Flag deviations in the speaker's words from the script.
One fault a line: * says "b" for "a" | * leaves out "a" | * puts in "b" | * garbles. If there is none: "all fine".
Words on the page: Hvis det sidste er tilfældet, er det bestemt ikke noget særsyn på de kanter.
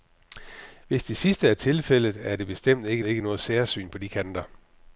* puts in "ikke"